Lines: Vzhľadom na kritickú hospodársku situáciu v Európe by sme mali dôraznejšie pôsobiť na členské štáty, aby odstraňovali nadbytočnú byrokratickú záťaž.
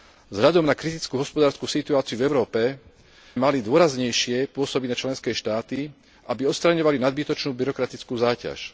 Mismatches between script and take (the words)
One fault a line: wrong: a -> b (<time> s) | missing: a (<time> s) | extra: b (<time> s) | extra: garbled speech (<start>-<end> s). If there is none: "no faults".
missing: by sme (2.6 s)